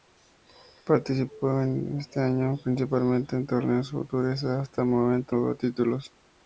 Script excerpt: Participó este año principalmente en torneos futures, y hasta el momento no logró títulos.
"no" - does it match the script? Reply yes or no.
no